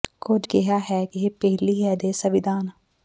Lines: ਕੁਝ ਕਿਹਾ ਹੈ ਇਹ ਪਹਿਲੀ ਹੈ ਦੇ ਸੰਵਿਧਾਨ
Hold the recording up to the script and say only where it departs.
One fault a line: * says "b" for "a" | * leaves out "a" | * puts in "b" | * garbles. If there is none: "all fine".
all fine